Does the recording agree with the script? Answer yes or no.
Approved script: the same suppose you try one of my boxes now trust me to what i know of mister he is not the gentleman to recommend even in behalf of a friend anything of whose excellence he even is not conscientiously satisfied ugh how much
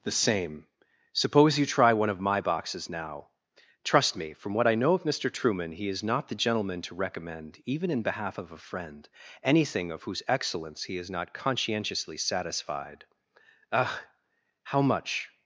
no